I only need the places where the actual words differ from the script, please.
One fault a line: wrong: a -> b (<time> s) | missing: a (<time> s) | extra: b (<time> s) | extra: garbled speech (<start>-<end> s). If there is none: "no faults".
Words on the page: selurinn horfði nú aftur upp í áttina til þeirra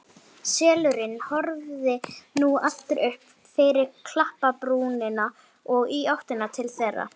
extra: fyrir klapparbrúnina og (3.6 s)